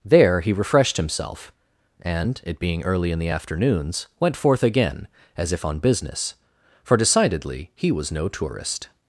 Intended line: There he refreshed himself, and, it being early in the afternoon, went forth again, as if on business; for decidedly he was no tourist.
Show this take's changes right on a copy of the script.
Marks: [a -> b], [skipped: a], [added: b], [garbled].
There he refreshed himself, and, it being early in the [afternoon, -> afternoons] went forth again, as if on business; for decidedly he was no tourist.